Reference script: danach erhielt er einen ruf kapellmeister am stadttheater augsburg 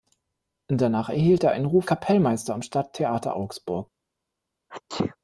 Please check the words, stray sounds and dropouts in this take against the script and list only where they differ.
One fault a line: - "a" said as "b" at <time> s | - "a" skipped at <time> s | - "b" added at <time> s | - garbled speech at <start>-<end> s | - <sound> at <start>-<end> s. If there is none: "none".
- sneeze at 4.7-5.2 s